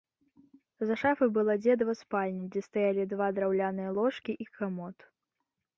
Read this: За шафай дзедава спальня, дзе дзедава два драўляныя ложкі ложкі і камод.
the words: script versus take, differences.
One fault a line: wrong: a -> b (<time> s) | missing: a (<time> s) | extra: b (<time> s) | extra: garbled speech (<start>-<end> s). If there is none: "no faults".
extra: была (1.4 s)
wrong: дзедава -> стаялі (2.7 s)
missing: ложкі (4.3 s)